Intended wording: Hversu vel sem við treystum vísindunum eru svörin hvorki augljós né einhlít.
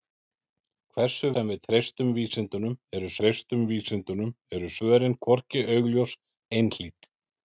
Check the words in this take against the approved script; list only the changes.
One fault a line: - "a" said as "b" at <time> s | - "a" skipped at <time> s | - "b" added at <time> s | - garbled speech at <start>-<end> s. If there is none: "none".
- "vel" skipped at 1.3 s
- "treystum vísindunum eru" added at 3.2 s
- "né" skipped at 6.2 s